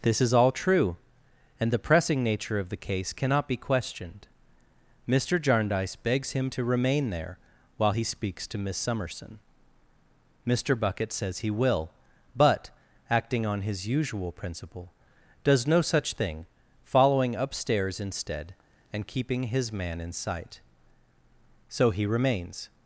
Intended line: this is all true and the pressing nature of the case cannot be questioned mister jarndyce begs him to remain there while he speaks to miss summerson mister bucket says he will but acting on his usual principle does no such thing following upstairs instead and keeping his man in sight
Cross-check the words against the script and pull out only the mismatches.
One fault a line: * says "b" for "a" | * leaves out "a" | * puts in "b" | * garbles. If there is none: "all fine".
* puts in "so he remains"